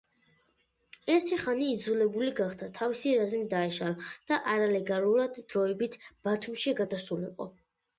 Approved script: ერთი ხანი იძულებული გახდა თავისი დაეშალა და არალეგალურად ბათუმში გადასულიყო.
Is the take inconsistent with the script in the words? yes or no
yes